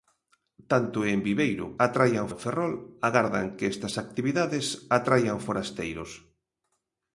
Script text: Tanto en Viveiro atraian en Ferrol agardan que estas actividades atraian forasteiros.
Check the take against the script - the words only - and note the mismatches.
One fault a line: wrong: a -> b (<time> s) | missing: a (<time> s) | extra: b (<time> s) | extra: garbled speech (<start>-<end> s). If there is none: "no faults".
no faults